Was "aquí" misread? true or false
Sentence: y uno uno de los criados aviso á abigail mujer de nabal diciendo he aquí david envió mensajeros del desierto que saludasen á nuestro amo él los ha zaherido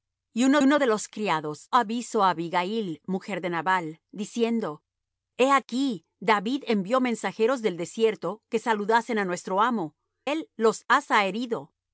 false